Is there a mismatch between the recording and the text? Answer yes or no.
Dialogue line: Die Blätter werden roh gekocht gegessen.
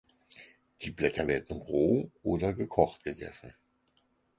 yes